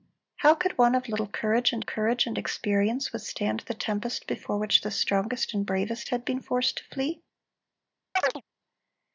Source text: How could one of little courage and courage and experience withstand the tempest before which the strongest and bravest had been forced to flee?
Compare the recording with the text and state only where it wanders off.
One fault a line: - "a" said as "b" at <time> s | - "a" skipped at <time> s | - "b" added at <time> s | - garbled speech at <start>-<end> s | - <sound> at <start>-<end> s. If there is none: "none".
- chirp at 8.2-8.4 s